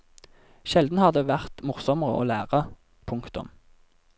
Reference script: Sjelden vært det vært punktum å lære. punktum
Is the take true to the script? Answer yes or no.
no